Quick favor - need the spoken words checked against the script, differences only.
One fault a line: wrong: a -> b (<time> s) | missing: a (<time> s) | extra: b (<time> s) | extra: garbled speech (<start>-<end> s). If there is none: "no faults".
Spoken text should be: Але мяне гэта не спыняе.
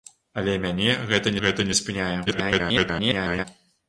extra: гэта (1.4 s)
extra: garbled speech (2.3-3.4 s)